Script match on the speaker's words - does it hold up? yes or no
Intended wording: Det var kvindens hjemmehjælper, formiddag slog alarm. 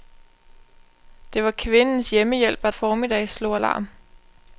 yes